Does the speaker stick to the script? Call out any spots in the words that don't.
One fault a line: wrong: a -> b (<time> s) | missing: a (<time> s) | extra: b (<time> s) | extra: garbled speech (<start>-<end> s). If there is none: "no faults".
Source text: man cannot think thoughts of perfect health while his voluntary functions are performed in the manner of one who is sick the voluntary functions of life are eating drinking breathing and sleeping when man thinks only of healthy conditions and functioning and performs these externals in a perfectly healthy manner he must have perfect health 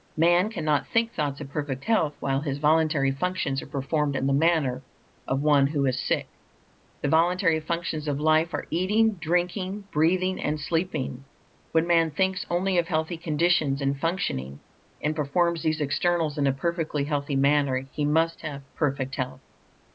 no faults